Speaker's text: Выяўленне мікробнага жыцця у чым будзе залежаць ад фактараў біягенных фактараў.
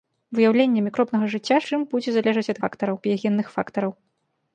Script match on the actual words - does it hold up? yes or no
yes